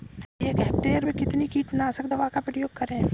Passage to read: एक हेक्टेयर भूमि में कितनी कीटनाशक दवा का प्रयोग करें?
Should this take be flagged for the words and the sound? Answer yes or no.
yes